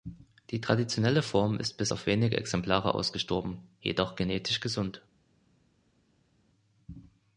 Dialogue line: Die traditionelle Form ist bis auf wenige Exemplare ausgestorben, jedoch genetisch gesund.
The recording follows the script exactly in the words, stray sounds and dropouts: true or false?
true